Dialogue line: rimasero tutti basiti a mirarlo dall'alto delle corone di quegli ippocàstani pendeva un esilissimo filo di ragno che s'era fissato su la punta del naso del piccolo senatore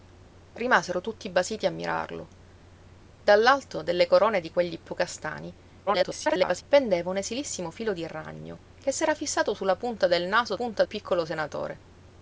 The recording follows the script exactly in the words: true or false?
false